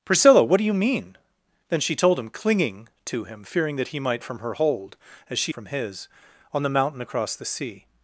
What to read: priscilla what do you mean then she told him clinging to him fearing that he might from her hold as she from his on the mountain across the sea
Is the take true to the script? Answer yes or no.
yes